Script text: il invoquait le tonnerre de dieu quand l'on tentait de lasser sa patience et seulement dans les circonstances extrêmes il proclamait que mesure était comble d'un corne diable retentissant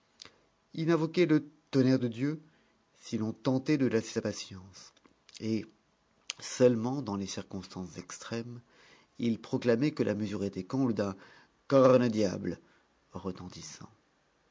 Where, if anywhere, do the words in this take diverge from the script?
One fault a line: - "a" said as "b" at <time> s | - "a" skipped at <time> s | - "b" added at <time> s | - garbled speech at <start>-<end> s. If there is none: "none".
- "quand" said as "si" at 3.0 s
- "la" added at 10.0 s